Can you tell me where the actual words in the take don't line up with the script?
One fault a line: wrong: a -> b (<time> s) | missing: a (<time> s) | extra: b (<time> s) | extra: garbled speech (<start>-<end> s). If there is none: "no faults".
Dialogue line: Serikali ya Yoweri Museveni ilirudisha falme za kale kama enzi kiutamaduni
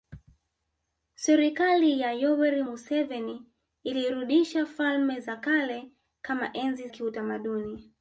no faults